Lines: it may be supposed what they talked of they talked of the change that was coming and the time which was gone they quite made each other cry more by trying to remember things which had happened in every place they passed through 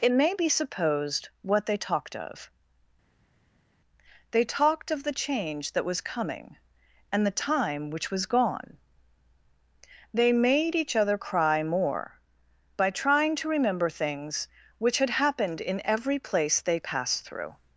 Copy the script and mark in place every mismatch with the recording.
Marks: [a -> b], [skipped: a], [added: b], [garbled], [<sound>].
it may be supposed what they talked of they talked of the change that was coming and the time which was gone they [skipped: quite] made each other cry more by trying to remember things which had happened in every place they passed through